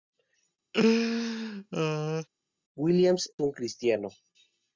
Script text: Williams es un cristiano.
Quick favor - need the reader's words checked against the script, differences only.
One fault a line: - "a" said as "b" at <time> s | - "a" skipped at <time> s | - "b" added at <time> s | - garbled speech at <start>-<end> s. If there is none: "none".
- "es" skipped at 3.3 s